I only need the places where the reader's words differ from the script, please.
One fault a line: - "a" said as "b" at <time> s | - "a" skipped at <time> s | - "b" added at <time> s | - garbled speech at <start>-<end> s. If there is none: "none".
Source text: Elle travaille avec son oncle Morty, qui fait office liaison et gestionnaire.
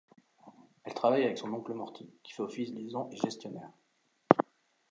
none